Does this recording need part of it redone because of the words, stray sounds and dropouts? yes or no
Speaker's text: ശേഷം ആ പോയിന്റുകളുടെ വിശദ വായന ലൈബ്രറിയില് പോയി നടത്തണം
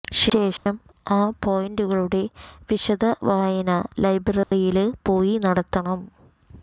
yes